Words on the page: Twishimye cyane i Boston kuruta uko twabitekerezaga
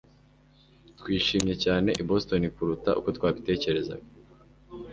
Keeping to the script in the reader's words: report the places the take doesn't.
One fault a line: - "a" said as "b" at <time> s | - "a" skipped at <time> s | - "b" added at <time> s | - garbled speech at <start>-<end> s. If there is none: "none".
none